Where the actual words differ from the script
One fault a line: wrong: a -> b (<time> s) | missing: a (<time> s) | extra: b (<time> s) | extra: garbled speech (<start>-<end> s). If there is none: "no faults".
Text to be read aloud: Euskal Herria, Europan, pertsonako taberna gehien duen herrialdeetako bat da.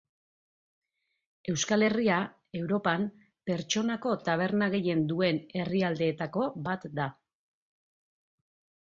no faults